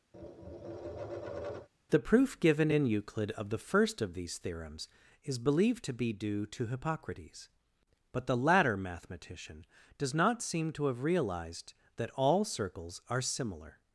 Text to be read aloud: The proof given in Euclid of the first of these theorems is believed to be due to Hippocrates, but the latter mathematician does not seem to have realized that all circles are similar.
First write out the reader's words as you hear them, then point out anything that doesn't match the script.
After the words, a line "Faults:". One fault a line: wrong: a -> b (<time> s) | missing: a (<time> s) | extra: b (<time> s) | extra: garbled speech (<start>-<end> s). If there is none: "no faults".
The proof given in Euclid of the first of these theorems is believed to be due to Hippocrates, but the latter mathematician does not seem to have realized that all circles are similar.
Faults:
no faults